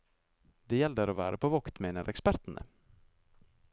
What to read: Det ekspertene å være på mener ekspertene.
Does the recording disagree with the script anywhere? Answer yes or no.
yes